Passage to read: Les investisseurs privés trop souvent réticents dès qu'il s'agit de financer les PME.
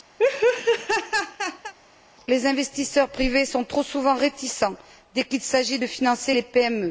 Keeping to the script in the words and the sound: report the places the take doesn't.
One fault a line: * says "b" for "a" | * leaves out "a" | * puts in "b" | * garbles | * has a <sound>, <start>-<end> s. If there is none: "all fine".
* has a laugh, 0.2-1.7 s
* puts in "sont"